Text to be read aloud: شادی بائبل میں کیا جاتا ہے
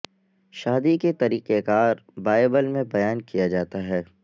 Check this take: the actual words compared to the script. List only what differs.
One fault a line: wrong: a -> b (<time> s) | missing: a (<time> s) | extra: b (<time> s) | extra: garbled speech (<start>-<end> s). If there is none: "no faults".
extra: کے طریقہ کار (0.9 s)
extra: بیان (2.9 s)